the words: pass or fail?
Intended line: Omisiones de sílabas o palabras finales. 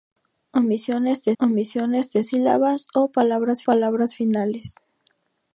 fail